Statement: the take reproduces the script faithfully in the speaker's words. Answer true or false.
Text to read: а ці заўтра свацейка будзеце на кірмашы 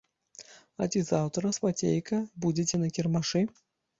true